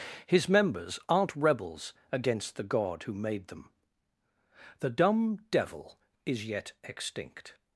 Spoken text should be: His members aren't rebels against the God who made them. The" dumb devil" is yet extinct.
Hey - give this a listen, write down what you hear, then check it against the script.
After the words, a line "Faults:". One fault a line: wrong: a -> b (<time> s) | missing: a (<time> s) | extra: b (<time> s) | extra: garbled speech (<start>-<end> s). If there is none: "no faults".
His members aren't rebels against the God who made them. The" dumb devil" is yet extinct.
Faults:
no faults